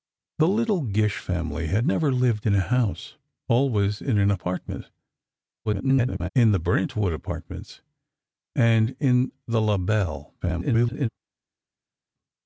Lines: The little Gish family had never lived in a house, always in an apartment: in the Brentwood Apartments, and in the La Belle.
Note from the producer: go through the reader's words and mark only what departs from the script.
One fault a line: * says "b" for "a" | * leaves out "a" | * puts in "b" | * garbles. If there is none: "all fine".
* garbles
* garbles